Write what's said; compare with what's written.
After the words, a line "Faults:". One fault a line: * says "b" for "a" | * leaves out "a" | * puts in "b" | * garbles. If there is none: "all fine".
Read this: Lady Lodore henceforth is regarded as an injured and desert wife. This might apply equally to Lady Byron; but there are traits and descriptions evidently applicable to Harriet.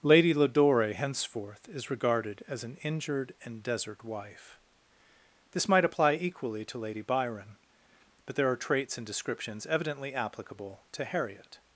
Lady Lodore henceforth is regarded as an injured and desert wife. This might apply equally to Lady Byron; but there are traits and descriptions evidently applicable to Harriet.
Faults:
all fine